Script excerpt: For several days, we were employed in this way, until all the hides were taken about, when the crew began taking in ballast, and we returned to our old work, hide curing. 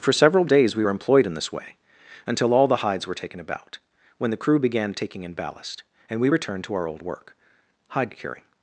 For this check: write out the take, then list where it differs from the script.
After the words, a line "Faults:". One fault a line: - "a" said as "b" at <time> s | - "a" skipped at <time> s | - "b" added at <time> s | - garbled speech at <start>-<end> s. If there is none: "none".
For several days, we were employed in this way, until all the hides were taken about, when the crew began taking in ballast, and we returned to our old work, hide curing.
Faults:
none